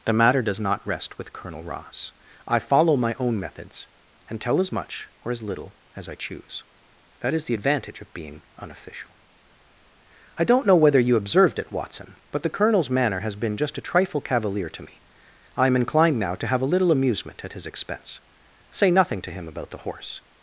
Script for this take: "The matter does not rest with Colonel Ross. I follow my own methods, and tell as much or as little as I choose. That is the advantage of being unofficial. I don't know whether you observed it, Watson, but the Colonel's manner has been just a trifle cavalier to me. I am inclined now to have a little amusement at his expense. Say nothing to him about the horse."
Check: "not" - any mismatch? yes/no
no